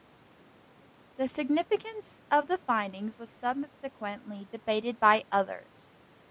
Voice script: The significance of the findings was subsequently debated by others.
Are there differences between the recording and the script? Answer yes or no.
no